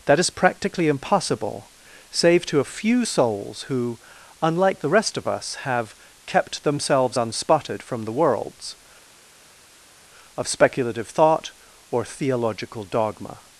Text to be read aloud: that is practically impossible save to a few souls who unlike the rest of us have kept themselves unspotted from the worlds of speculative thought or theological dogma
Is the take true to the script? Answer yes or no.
yes